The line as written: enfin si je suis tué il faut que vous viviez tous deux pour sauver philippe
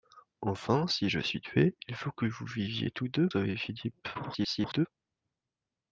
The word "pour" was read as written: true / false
false